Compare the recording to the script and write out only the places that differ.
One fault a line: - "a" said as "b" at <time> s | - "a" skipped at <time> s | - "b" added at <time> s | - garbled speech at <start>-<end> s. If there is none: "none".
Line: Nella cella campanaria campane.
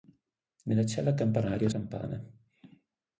none